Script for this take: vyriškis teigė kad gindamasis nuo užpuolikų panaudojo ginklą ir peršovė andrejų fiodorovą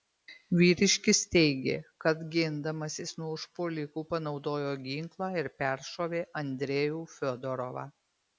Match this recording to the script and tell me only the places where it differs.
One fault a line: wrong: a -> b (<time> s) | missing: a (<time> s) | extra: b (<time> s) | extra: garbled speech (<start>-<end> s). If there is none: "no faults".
no faults